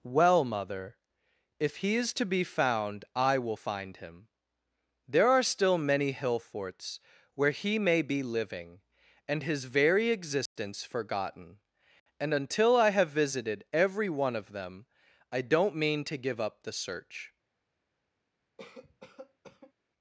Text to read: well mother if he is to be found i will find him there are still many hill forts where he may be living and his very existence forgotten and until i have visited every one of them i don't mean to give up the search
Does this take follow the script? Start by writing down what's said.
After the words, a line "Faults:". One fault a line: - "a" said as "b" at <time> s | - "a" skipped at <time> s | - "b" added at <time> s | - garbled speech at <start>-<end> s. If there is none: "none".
well mother if he is to be found i will find him there are still many hill forts where he may be living and his very existence forgotten and until i have visited every one of them i don't mean to give up the search
Faults:
none